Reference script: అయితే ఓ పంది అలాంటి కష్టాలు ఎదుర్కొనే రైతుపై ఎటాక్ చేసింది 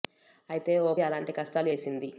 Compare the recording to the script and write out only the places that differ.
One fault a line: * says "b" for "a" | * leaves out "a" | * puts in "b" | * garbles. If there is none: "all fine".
* leaves out "పంది"
* leaves out "ఎదుర్కొనే రైతుపై ఎటాక్"